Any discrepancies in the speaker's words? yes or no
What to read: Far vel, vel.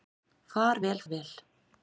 no